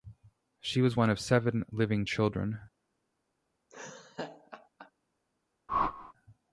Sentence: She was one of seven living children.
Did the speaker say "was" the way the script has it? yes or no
yes